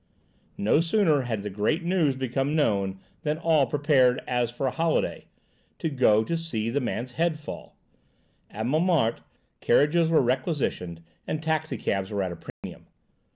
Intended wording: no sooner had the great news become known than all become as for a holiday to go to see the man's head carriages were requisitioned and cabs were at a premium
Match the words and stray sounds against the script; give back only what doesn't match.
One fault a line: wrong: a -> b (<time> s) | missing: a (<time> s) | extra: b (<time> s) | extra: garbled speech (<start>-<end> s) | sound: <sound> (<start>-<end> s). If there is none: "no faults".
wrong: become -> prepared (3.6 s)
extra: fall at montmartre (7.4 s)
extra: taxi (11.4 s)
sound: dropout (12.5-12.6 s)